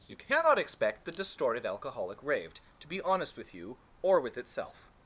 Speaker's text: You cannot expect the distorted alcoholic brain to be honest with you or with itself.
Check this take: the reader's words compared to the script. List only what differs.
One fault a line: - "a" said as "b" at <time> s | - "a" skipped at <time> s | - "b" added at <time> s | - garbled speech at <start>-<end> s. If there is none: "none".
- "brain" said as "raved" at 2.2 s